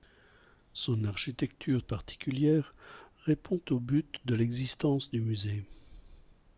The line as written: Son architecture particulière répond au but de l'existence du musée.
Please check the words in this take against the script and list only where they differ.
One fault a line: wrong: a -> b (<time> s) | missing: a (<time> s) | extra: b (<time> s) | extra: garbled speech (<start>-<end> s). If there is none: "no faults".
no faults